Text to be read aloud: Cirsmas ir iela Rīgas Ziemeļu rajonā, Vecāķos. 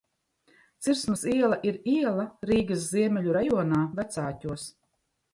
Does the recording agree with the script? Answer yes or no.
no